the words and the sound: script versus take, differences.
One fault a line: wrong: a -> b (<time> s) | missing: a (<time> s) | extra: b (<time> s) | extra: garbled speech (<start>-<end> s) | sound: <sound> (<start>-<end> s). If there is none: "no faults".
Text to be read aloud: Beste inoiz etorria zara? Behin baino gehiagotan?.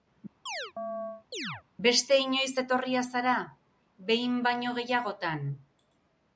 sound: chirp (0.5-1.6 s)